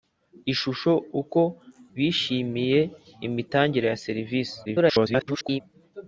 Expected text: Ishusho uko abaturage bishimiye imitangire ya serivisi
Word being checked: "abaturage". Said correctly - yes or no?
no